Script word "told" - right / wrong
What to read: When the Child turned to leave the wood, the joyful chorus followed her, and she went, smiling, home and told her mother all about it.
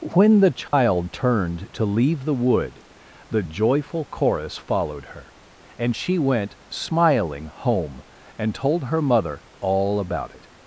right